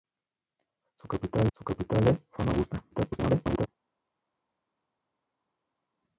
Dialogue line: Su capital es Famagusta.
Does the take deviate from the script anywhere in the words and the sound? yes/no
yes